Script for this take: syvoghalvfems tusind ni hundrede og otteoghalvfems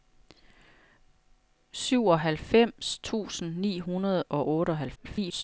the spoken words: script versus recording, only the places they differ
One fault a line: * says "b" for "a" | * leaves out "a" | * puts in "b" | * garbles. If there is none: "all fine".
* garbles